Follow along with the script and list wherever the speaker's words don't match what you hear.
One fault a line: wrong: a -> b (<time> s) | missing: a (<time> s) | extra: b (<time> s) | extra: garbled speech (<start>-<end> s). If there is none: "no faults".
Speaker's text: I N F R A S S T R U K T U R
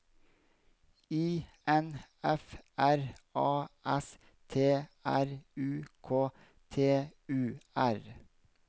missing: S (4.2 s)